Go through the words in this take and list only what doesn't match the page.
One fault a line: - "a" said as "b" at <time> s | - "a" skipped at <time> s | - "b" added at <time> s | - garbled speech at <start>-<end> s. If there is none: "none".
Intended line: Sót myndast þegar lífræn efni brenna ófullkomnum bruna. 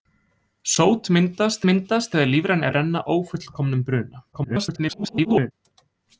- "myndast" added at 1.7 s
- "efni" skipped at 2.7 s
- garbled speech at 4.3-5.5 s